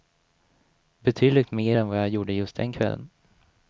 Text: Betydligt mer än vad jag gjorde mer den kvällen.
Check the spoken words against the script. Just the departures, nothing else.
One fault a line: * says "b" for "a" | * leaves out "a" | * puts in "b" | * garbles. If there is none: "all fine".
* says "just" for "mer"